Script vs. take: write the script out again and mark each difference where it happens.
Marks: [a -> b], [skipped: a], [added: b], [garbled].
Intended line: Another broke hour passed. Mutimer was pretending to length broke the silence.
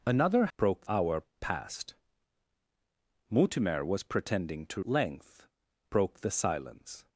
Another broke hour passed. Mutimer was pretending to length broke the silence.